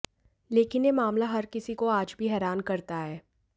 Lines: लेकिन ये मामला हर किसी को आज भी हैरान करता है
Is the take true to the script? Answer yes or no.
yes